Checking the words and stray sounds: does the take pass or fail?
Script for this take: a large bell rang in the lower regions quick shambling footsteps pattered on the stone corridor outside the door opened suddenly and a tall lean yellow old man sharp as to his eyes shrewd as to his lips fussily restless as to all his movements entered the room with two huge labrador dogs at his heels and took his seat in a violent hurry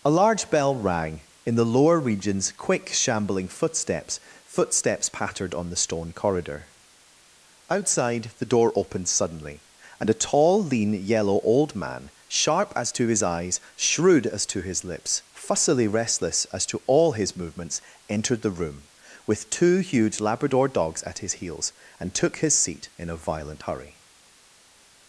fail